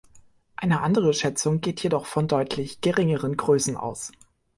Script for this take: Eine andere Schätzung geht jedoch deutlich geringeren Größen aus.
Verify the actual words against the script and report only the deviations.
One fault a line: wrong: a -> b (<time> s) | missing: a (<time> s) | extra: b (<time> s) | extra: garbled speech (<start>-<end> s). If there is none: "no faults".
extra: von (2.1 s)